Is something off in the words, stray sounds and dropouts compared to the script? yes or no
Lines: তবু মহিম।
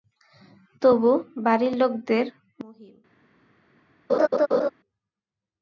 yes